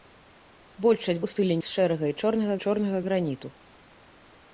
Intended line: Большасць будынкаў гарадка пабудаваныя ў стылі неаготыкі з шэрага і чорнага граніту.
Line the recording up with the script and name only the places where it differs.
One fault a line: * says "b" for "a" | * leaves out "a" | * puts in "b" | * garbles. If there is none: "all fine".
* leaves out "будынкаў гарадка пабудаваныя"
* leaves out "неаготыкі"
* puts in "чорнага"